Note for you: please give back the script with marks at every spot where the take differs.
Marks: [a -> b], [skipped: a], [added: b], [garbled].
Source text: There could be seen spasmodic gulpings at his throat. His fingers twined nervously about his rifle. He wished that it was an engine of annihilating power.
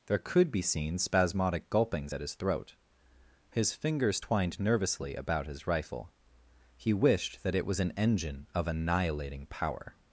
There could be seen spasmodic gulpings at his throat. His fingers twined nervously about his rifle. He wished that it was an engine of annihilating power.